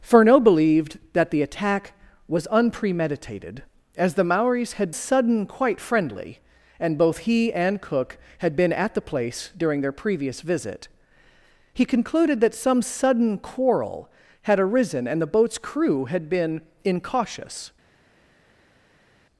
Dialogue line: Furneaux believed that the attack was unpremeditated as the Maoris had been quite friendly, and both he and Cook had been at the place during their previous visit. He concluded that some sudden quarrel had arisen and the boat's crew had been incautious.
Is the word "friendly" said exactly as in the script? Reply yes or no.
yes